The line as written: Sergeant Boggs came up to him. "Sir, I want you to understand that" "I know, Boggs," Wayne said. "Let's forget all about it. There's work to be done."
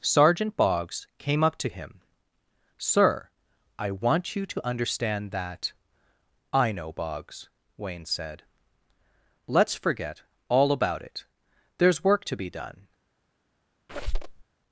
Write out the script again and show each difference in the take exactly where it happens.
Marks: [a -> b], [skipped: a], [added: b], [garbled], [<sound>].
Sergeant Boggs came up to him. "Sir, I want you to understand that" "I know, Boggs," Wayne said. "Let's forget all about it. There's work to be done." [squeak]